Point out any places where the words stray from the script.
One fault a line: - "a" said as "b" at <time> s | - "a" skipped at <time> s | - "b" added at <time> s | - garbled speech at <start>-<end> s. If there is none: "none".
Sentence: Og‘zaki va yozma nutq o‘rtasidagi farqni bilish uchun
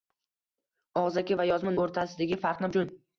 - "nutq" skipped at 1.7 s
- "bilish" skipped at 2.7 s